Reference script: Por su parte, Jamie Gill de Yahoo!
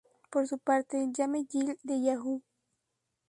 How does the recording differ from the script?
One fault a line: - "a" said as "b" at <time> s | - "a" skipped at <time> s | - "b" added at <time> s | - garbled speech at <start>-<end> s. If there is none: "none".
none